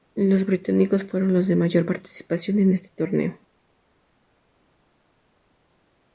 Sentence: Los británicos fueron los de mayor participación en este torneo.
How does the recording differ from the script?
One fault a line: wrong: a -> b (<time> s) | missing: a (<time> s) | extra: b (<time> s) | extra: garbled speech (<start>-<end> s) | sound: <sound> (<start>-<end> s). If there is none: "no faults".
no faults